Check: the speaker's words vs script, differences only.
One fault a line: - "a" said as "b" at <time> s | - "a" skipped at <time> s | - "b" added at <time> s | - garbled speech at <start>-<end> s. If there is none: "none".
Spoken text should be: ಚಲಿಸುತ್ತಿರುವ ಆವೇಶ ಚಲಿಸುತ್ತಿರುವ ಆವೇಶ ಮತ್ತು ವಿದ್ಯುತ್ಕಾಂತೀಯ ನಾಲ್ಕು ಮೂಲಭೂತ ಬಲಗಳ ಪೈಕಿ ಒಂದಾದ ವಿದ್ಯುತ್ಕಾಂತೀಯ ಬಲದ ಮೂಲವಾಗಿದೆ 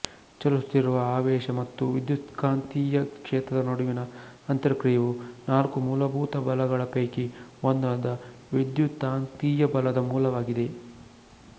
- "ಚಲಿಸುತ್ತಿರುವ ಆವೇಶ ಮತ್ತು ವಿದ್ಯುತ್ಕಾಂತೀಯ" said as "ಮತ್ತು ವಿದ್ಯುತ್ಕಾಂತೀಯ ಕ್ಷೇತ್ರದ ನಡುವಿನ ಅಂತರಕ್ರಿಯೆಯು" at 1.6 s